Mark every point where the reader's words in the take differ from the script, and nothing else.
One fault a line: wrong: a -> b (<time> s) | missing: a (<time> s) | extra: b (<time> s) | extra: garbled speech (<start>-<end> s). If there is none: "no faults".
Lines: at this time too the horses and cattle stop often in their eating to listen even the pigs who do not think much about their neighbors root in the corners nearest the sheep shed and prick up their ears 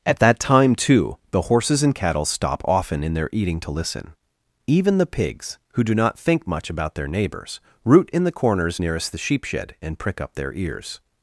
wrong: this -> that (0.2 s)